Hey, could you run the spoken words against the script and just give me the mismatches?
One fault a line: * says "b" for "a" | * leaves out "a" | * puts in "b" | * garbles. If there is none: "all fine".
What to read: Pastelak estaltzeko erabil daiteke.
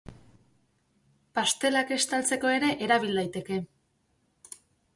* puts in "ere"